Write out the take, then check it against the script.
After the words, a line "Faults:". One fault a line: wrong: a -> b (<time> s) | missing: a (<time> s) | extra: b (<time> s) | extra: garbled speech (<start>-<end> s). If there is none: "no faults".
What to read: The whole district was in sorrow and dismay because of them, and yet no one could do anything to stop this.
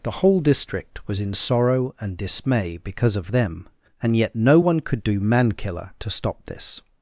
The whole district was in sorrow and dismay because of them, and yet no one could do mankiller to stop this.
Faults:
wrong: anything -> mankiller (5.2 s)